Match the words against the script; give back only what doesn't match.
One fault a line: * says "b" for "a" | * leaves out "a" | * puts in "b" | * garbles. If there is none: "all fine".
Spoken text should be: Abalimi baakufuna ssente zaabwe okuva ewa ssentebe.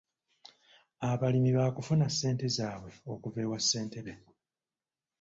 all fine